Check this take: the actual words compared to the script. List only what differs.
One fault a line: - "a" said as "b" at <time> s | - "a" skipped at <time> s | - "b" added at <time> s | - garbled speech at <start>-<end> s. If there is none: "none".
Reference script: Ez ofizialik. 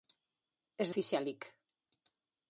none